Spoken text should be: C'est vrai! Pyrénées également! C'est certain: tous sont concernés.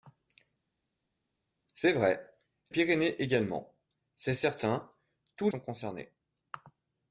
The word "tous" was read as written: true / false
true